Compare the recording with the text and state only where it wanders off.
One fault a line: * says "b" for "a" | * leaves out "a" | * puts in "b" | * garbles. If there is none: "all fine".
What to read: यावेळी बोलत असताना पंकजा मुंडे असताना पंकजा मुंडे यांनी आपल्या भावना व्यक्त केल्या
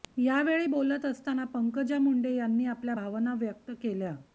* leaves out "असताना पंकजा मुंडे"